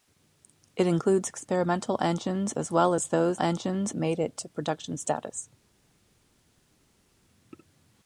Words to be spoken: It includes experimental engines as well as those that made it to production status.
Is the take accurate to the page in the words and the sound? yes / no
no